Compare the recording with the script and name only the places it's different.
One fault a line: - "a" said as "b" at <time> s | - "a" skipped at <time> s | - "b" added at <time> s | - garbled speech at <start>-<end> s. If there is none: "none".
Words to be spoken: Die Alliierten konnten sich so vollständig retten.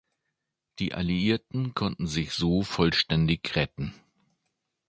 none